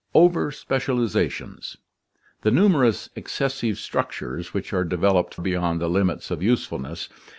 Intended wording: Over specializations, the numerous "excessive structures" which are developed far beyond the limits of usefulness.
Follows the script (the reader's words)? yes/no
no